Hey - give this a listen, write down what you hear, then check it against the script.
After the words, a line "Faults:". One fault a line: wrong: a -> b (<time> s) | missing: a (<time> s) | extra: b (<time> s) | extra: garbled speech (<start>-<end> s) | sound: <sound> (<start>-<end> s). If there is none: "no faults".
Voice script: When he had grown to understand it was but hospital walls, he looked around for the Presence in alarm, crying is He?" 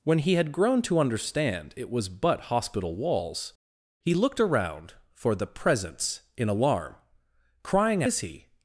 When he had grown to understand it was but hospital walls, he looked around for the Presence in alarm, crying is He?"
Faults:
no faults